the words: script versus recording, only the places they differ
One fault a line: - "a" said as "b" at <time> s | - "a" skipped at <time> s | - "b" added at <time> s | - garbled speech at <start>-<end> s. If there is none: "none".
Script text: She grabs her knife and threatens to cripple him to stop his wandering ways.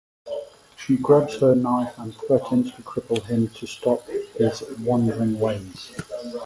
none